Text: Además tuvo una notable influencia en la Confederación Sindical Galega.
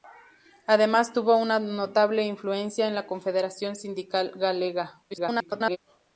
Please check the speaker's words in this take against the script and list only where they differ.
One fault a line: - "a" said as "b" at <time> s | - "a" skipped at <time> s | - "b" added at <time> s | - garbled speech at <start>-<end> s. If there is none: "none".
- garbled speech at 5.1-5.8 s